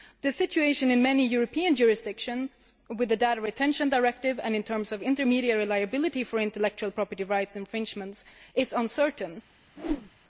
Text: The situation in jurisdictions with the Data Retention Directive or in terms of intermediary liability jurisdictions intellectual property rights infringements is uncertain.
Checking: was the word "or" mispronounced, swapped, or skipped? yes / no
yes